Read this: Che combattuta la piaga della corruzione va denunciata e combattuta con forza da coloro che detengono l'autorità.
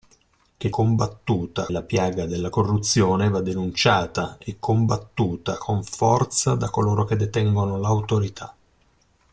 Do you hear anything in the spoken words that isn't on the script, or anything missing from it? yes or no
no